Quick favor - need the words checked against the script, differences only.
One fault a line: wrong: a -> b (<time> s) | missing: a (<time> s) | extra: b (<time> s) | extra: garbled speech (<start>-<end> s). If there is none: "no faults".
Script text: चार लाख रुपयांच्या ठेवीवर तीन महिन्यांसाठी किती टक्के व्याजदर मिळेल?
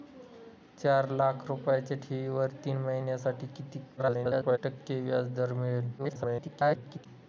extra: garbled speech (4.0-4.6 s)
extra: garbled speech (6.0-7.1 s)